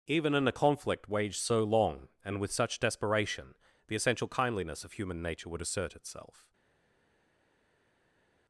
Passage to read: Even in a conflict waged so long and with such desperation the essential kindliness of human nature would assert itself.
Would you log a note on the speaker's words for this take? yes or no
no